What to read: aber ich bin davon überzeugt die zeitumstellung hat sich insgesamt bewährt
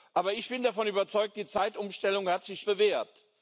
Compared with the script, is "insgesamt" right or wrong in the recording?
wrong